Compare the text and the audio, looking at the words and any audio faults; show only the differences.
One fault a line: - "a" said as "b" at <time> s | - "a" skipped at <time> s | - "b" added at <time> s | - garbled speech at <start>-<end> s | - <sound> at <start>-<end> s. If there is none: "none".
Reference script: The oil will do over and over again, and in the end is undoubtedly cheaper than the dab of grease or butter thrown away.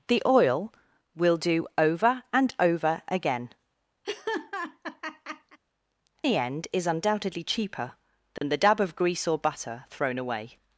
- "and in" skipped at 3.5 s
- laugh at 4.0-5.6 s
- dropout at 8.4-8.4 s